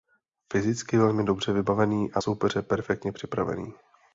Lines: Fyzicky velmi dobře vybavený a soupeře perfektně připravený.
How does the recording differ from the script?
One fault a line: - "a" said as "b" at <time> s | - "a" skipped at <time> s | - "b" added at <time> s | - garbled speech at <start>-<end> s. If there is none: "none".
none